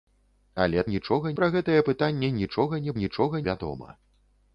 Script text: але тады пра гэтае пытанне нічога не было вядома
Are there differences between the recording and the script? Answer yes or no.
yes